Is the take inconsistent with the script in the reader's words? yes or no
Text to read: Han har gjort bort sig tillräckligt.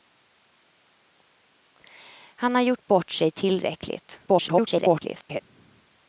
yes